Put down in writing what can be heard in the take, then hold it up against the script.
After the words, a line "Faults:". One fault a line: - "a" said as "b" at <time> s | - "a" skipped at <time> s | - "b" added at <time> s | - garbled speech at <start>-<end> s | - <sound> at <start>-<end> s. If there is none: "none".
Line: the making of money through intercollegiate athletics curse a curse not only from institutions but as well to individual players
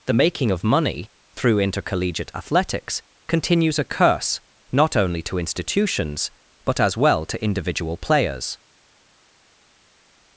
the making of money through intercollegiate athletics continues a curse not only to institutions but as well to individual players
Faults:
- "curse" said as "continues" at 3.3 s
- "from" said as "to" at 5.2 s